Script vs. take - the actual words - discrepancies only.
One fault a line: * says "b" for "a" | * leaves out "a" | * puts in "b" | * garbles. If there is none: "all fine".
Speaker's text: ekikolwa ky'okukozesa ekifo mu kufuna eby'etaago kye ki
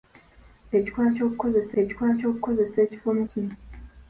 * puts in "ekikolwa ky'okukozesa"
* leaves out "kufuna eby'etaago kye"